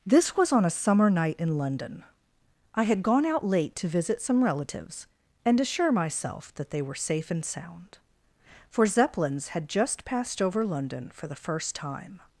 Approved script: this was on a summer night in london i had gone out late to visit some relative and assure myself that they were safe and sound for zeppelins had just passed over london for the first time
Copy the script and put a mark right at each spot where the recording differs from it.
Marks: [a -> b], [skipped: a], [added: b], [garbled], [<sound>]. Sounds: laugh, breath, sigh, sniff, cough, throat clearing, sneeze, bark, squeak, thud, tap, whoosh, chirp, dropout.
this was on a summer night in london i had gone out late to visit some [relative -> relatives] and assure myself that they were safe and sound for zeppelins had just passed over london for the first time